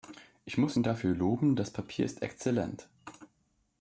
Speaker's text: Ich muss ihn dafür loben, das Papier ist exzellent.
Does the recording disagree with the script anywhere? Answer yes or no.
no